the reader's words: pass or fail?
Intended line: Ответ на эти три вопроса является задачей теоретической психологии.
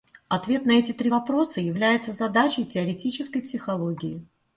pass